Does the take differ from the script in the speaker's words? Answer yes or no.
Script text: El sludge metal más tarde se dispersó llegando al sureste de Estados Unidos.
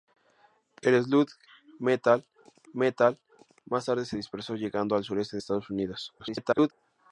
yes